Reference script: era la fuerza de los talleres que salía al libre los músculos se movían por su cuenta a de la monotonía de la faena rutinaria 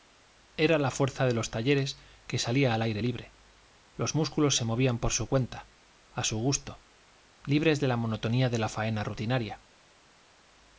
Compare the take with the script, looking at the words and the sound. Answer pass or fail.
fail